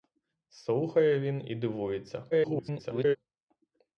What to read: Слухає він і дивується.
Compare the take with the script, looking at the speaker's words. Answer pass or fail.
fail